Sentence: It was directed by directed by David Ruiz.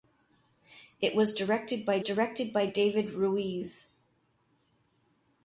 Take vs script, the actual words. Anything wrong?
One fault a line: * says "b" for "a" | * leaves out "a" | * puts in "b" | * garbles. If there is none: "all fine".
all fine